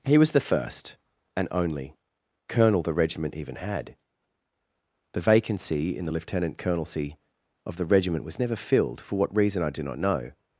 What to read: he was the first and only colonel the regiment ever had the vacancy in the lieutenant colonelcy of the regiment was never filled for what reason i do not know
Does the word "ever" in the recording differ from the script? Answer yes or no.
yes